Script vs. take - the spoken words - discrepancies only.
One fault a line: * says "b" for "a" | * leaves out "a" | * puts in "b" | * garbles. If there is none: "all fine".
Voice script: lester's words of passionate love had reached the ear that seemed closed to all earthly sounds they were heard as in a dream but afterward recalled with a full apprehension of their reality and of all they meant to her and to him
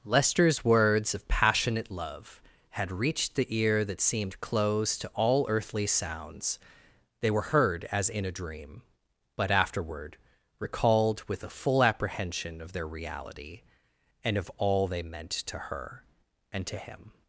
all fine